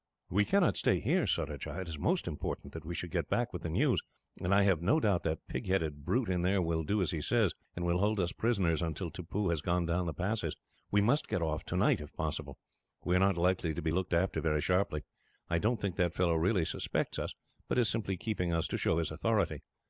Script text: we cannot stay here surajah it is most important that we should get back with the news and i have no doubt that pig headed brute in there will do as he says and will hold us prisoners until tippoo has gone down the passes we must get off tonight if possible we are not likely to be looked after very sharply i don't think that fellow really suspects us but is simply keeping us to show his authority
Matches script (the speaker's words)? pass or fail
pass